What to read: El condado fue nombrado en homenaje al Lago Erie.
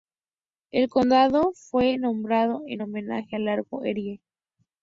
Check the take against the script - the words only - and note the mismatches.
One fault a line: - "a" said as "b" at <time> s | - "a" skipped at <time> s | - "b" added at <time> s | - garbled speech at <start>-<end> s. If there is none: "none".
none